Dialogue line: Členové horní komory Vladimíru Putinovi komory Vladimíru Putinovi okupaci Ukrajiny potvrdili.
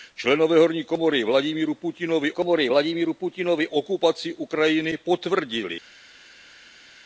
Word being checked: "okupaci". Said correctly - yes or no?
yes